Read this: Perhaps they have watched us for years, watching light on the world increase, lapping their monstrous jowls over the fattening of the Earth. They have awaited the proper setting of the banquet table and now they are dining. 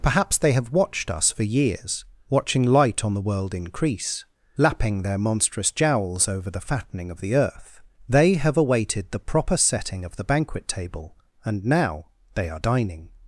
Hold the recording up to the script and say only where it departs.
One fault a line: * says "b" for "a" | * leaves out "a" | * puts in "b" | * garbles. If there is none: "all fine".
all fine